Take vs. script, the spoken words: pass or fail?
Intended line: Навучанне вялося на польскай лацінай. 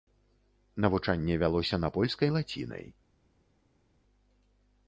pass